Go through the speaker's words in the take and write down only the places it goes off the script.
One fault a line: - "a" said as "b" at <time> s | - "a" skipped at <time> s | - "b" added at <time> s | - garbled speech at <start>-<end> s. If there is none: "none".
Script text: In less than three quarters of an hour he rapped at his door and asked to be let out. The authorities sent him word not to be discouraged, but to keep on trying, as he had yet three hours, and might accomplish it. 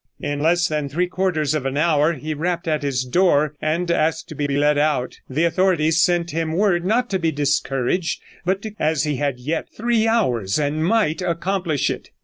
- "be" added at 4.5 s
- "keep on trying" skipped at 8.7 s